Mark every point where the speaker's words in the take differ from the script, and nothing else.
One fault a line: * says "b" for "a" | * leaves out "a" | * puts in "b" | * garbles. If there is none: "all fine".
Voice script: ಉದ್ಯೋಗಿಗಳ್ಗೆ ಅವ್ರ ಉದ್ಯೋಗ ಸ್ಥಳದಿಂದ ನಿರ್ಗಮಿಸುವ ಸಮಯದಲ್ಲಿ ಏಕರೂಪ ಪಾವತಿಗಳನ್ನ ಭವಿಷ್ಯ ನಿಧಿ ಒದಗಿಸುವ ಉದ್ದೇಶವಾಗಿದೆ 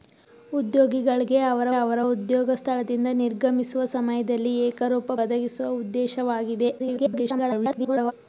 * puts in "ಅವ್ರ"
* leaves out "ಪಾವತಿಗಳನ್ನ ಭವಿಷ್ಯ ನಿಧಿ"
* garbles